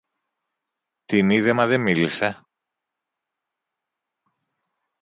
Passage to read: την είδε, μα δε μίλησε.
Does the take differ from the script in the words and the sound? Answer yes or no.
no